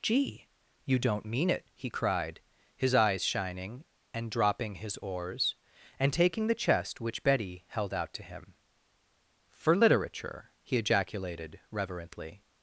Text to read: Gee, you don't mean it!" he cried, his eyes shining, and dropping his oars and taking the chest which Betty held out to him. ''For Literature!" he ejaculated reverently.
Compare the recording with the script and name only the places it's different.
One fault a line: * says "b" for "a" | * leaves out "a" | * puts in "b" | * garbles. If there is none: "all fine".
all fine